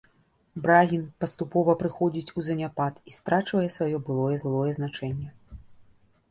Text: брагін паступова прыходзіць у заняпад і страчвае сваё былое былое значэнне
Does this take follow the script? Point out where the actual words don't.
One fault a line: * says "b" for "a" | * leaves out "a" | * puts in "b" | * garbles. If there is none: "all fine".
all fine